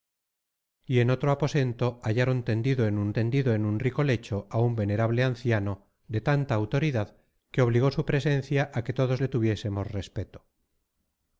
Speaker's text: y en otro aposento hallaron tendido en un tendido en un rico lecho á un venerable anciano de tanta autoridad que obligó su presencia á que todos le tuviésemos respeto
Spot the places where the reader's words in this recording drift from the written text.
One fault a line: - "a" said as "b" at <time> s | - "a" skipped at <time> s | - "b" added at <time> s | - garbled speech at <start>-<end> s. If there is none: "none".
none